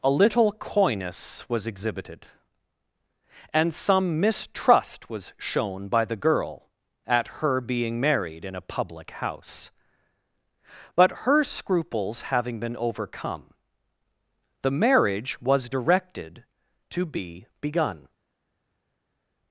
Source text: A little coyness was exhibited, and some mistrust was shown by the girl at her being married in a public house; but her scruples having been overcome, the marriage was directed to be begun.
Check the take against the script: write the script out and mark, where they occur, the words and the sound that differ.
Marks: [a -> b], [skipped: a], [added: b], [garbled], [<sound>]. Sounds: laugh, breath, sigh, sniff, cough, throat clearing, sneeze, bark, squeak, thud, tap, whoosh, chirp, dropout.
A little coyness was exhibited, and some mistrust was shown by the girl at her being married in a public house; but her scruples having been overcome, the marriage was directed to be begun.